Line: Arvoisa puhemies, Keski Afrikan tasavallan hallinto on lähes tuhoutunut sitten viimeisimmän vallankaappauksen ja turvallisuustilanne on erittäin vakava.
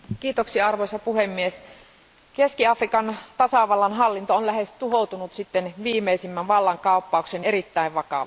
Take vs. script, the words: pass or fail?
fail